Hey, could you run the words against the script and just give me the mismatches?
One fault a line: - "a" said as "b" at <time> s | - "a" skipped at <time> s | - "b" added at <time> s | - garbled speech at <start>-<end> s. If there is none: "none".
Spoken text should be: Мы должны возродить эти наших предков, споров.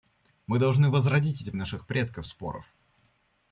none